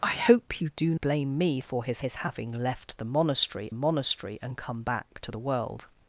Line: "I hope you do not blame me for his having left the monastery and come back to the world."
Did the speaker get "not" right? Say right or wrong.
wrong